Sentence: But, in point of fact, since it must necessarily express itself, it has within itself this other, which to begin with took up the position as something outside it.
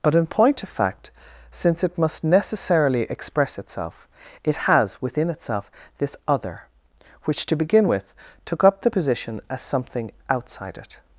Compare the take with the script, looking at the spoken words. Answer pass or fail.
pass